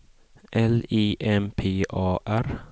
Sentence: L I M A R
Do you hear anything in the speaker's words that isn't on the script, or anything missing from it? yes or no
yes